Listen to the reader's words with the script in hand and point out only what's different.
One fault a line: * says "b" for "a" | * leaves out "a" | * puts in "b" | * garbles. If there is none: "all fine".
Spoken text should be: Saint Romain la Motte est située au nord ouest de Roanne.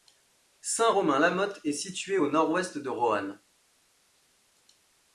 all fine